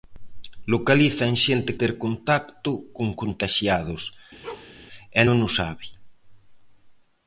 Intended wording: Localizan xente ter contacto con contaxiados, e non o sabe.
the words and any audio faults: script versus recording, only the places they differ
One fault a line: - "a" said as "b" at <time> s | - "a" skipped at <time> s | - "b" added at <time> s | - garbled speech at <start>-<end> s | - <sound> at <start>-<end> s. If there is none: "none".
- bark at 4.4-4.7 s